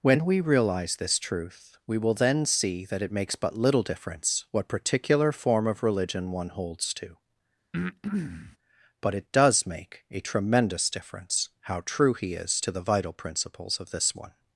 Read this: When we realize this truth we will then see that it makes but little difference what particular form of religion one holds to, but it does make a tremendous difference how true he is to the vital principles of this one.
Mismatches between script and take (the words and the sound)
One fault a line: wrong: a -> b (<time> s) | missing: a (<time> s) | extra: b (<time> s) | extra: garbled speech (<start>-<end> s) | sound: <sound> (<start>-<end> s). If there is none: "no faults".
sound: breath (7.7-8.6 s)